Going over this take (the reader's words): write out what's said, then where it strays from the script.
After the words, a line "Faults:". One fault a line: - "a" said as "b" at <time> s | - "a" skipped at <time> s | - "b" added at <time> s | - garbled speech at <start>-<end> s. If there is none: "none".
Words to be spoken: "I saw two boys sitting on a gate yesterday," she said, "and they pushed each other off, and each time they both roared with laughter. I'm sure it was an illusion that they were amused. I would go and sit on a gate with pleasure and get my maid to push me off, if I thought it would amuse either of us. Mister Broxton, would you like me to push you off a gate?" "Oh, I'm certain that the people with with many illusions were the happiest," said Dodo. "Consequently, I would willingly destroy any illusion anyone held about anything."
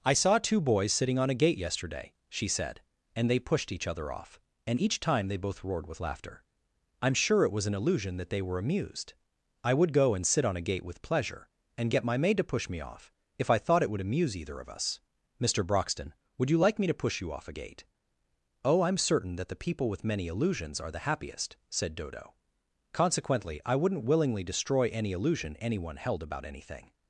"I saw two boys sitting on a gate yesterday," she said, "and they pushed each other off, and each time they both roared with laughter. I'm sure it was an illusion that they were amused. I would go and sit on a gate with pleasure and get my maid to push me off, if I thought it would amuse either of us. Mister Broxton, would you like me to push you off a gate?" "Oh, I'm certain that the people with many illusions are the happiest," said Dodo. "Consequently, I wouldn't willingly destroy any illusion anyone held about anything."
Faults:
- "with" skipped at 20.0 s
- "were" said as "are" at 20.8 s
- "would" said as "wouldn't" at 23.8 s